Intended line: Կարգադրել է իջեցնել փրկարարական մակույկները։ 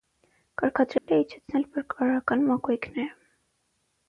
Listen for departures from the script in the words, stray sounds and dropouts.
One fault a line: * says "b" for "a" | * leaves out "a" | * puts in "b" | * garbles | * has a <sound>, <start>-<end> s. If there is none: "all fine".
* has a dropout, 1.0-1.1 s